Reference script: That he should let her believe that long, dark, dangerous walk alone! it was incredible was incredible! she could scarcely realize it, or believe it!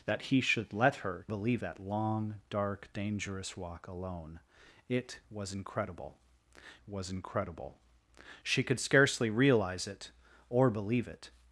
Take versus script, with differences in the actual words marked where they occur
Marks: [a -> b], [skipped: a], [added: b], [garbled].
That he should let her believe that long, dark, dangerous walk alone! it was incredible was incredible! she could scarcely realize it, or believe it!